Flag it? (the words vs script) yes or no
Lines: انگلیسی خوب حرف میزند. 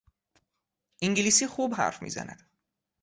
no